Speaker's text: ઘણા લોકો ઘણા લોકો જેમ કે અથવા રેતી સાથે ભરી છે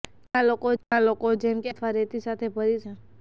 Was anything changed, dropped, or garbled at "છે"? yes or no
no